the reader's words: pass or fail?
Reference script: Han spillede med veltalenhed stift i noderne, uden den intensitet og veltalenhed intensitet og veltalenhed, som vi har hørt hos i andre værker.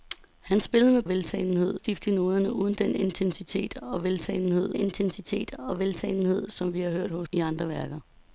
pass